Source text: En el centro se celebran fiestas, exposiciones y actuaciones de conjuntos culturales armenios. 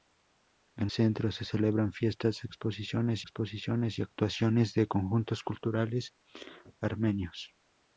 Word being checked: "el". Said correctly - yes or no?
no